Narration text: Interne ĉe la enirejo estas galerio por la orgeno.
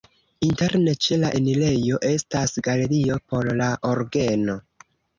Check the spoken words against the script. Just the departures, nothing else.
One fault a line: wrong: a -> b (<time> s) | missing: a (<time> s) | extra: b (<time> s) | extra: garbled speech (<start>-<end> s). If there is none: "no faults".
no faults